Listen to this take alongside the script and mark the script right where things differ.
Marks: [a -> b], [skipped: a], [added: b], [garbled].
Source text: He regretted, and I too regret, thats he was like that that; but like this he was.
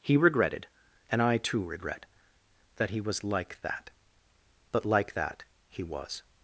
He regretted, and I too regret, [thats -> that] he was like that [skipped: that;] but like [this -> that] he was.